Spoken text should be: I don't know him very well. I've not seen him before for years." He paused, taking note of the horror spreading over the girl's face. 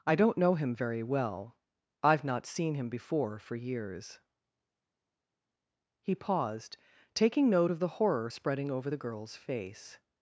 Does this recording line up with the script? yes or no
yes